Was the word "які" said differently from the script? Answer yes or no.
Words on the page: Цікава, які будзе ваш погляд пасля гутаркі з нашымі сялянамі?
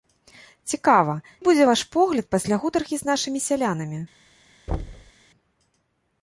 yes